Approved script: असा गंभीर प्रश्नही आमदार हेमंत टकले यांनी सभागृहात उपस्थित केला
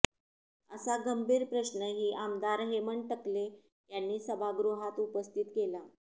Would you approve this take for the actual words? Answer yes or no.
yes